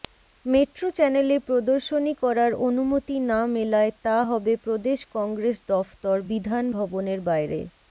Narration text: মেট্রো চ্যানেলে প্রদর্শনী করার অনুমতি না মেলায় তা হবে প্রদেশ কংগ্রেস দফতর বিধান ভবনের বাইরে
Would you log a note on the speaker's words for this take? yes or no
no